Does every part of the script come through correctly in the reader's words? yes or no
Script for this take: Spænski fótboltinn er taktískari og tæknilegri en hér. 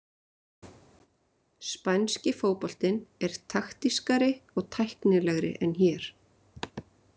yes